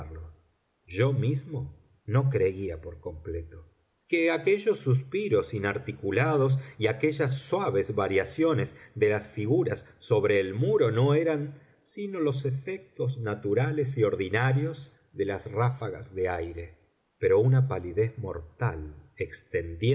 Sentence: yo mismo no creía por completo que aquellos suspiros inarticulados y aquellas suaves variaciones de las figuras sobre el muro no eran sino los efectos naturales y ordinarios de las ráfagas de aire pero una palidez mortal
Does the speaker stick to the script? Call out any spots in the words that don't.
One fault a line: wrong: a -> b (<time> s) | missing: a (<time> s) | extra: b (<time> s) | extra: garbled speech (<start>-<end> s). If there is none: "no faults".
no faults